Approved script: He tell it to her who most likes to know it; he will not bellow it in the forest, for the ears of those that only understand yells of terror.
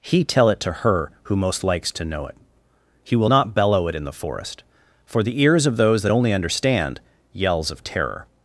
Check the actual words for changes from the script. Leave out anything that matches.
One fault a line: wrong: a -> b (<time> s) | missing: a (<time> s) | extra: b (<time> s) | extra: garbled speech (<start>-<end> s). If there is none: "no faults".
no faults